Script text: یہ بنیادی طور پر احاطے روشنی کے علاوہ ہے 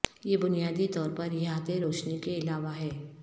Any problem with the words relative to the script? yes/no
no